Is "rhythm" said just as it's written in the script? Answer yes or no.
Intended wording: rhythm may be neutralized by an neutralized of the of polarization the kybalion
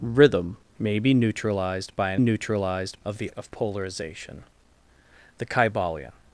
yes